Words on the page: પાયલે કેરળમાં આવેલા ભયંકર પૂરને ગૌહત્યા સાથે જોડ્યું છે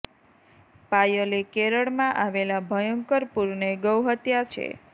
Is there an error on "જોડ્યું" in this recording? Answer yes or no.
yes